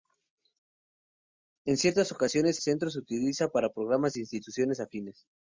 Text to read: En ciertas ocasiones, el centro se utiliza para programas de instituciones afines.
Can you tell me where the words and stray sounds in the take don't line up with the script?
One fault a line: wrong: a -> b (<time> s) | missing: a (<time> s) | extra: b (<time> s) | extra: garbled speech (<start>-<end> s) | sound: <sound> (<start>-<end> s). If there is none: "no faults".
missing: el (2.6 s)